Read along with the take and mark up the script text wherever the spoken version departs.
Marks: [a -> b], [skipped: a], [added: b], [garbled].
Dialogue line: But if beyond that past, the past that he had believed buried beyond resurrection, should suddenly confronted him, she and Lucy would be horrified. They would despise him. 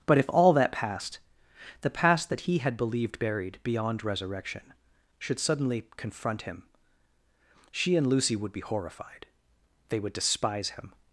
But if [beyond -> all] that past, the past that he had believed buried beyond resurrection, should suddenly [confronted -> confront] him, she and Lucy would be horrified. They would despise him.